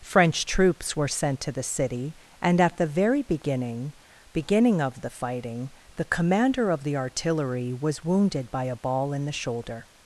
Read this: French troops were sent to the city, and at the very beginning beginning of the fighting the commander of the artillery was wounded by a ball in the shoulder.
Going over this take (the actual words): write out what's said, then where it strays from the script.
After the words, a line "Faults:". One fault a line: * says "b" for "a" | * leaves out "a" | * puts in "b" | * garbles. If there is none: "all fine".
French troops were sent to the city, and at the very beginning beginning of the fighting the commander of the artillery was wounded by a ball in the shoulder.
Faults:
all fine